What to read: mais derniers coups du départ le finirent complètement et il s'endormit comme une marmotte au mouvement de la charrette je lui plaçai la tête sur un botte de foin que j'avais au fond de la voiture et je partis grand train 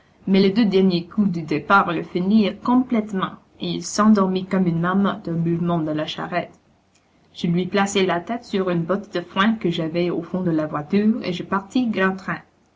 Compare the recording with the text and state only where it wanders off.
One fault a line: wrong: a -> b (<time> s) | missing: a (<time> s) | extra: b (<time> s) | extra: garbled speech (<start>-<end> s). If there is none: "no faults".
extra: les deux (0.4 s)
wrong: un -> une (8.7 s)